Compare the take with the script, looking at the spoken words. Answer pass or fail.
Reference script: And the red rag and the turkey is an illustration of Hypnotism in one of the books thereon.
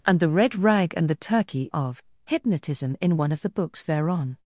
fail